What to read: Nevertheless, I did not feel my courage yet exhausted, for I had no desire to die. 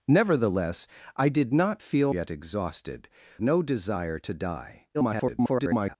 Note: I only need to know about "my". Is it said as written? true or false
false